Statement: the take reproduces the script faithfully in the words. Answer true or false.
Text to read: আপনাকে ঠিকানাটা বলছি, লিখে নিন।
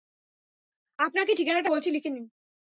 true